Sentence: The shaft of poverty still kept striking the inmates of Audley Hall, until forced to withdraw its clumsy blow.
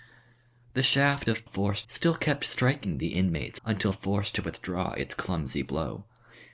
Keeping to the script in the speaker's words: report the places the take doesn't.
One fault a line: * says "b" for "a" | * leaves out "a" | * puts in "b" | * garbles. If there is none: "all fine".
* says "forced" for "poverty"
* leaves out "of Audley Hall"